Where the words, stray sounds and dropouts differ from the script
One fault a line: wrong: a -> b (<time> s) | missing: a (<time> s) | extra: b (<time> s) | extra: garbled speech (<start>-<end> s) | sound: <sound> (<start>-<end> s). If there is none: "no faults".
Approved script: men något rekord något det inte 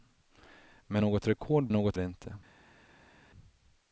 no faults